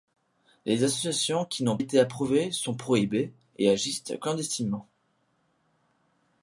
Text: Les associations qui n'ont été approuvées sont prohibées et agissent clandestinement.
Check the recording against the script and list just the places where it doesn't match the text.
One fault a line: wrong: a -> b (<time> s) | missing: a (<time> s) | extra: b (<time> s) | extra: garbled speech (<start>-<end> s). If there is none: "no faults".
no faults